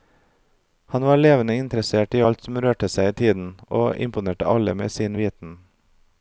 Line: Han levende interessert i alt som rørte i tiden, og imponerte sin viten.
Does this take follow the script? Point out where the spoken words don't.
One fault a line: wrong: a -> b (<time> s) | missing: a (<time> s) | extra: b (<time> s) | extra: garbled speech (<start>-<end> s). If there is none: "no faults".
extra: var (1.0 s)
extra: seg (2.9 s)
extra: alle med (4.5 s)